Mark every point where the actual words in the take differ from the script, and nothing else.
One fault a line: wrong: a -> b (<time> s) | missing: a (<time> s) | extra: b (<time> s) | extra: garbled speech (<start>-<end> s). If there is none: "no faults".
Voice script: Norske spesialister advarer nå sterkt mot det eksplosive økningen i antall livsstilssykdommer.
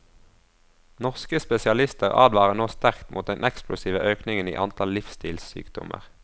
wrong: det -> den (3.3 s)